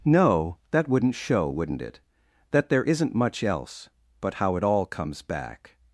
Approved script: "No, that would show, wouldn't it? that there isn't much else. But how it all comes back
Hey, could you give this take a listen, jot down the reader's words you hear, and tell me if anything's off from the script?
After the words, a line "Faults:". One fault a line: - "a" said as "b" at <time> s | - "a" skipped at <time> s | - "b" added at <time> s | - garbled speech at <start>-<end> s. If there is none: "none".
"No, that wouldn't show, wouldn't it? that there isn't much else. But how it all comes back
Faults:
- "would" said as "wouldn't" at 0.9 s